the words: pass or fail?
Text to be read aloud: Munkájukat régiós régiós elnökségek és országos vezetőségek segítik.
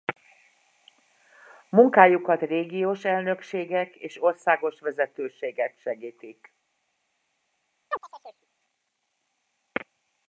fail